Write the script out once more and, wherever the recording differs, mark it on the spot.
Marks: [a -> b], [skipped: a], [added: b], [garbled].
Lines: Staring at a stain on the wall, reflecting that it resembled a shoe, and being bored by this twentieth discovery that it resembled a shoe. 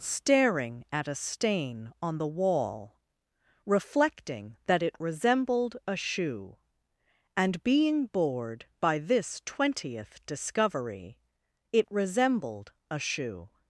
Staring at a stain on the wall, reflecting that it resembled a shoe, and being bored by this twentieth discovery [skipped: that] it resembled a shoe.